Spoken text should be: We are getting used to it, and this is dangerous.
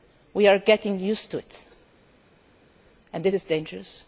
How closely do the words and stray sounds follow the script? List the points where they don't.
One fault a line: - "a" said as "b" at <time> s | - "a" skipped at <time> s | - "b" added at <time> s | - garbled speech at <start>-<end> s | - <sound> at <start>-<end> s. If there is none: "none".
none